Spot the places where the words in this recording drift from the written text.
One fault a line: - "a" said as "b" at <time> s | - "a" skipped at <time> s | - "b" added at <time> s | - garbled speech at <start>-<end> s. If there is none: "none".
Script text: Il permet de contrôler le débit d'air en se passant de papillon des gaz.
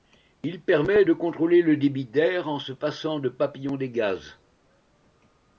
none